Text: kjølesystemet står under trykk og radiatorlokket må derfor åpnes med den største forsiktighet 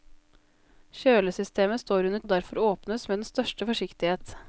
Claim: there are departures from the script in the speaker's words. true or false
true